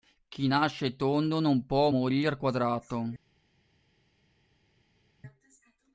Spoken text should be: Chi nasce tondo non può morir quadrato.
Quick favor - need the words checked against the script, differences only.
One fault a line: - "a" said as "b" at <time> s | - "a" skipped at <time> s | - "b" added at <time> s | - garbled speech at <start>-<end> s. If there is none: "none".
none